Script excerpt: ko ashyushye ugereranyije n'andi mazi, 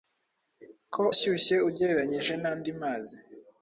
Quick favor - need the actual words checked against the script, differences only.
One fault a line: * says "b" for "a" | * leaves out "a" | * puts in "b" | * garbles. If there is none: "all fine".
all fine